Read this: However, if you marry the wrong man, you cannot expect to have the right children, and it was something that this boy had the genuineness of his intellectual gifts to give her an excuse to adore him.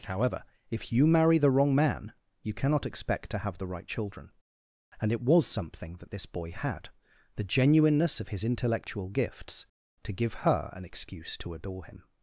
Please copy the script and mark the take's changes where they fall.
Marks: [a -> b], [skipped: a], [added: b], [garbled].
However, if you marry the wrong man, you cannot expect to have the right children, and it was something that this boy had the genuineness of his intellectual gifts to give her an excuse to adore him.